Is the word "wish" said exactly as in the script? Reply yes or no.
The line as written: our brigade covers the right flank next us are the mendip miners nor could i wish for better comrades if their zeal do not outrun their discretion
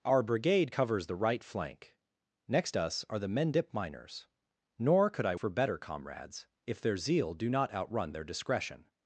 no